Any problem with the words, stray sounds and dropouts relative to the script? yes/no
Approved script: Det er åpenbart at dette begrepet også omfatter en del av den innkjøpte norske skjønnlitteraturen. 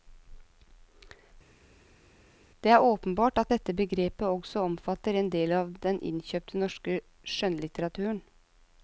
no